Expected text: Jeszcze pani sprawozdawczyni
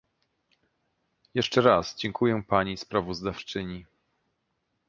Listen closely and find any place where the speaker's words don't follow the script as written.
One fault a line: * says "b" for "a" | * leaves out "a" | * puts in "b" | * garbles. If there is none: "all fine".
* puts in "raz dziękuję"